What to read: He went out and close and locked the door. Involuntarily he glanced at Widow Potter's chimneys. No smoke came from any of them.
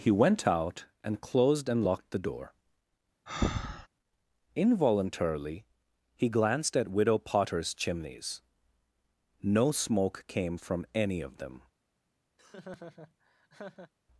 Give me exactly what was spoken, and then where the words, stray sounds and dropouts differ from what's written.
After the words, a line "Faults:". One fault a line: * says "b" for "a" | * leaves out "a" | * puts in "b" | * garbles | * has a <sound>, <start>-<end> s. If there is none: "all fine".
He went out and closed and locked the door. Involuntarily he glanced at Widow Potter's chimneys. No smoke came from any of them.
Faults:
* says "closed" for "close"
* has a breath, 3.3-3.9 s
* has a laugh, 12.4-13.9 s